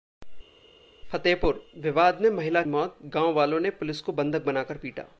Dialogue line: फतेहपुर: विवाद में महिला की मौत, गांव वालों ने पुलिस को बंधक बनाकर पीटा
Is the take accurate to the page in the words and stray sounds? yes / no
no